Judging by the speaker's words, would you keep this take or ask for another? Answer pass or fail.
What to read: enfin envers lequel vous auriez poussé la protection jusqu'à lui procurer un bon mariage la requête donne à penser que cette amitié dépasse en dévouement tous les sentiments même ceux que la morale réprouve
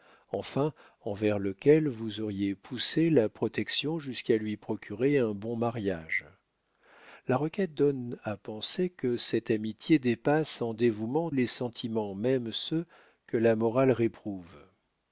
fail